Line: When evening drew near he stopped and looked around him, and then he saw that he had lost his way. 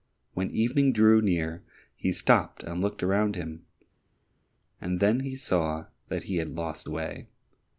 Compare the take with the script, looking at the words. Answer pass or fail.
fail